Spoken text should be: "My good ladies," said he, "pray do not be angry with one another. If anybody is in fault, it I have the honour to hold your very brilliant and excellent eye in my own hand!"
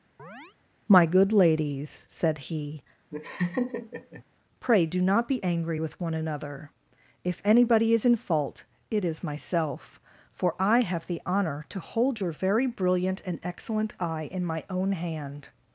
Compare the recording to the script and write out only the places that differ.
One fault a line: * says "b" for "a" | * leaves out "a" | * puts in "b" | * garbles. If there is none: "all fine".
* puts in "is myself for"